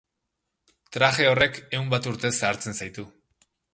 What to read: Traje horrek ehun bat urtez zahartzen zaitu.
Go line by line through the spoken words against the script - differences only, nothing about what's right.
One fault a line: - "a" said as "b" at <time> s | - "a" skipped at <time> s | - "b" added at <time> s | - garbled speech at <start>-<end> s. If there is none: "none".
none